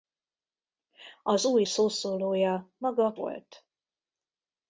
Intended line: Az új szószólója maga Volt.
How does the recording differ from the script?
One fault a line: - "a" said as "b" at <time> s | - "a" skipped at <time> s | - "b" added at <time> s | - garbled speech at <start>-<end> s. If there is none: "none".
none